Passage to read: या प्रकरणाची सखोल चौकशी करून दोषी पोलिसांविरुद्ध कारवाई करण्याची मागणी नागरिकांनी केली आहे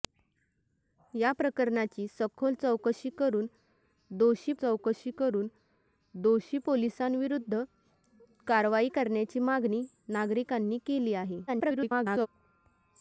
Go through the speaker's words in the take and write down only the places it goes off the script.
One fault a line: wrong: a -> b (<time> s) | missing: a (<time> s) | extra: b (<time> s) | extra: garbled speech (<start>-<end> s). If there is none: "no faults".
extra: चौकशी करून दोषी (4.5 s)
extra: garbled speech (11.5-12.3 s)